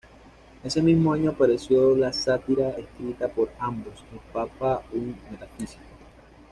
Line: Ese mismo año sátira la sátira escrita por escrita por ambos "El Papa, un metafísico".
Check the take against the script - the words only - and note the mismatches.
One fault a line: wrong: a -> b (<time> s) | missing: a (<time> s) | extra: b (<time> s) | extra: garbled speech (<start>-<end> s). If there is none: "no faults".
wrong: sátira -> apareció (1.3 s)
missing: escrita por (3.5 s)